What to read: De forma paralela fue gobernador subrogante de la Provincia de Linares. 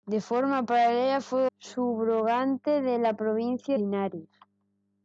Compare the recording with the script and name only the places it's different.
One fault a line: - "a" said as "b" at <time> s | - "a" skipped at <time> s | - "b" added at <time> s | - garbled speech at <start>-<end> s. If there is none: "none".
- "gobernador" skipped at 1.4 s
- "de" skipped at 3.8 s